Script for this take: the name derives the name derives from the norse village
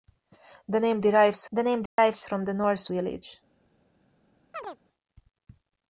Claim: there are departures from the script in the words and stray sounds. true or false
true